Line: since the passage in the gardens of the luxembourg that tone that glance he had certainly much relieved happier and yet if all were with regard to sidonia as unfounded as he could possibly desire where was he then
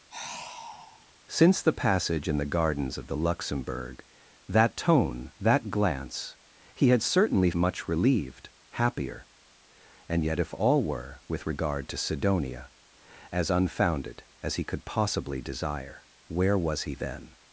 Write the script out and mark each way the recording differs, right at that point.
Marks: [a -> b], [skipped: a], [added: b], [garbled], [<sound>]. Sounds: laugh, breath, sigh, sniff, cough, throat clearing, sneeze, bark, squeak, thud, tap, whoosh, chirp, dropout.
[sigh] since the passage in the gardens of the luxembourg that tone that glance he had certainly much relieved happier and yet if all were with regard to sidonia as unfounded as he could possibly desire where was he then